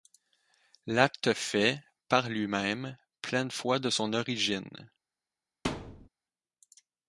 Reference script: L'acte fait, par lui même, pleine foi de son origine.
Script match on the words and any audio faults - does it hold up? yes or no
no